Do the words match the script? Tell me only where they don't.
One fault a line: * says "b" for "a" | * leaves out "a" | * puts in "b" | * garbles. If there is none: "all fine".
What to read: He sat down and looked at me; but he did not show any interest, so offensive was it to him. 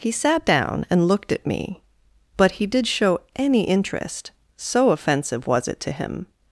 * leaves out "not"